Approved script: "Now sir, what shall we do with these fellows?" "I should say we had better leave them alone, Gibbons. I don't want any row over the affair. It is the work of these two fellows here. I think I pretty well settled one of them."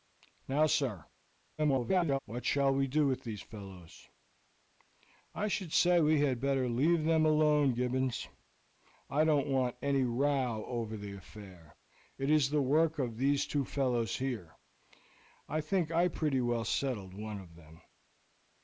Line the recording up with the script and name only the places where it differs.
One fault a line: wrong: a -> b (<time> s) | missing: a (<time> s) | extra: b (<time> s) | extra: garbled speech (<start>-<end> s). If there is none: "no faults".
extra: garbled speech (1.6-2.2 s)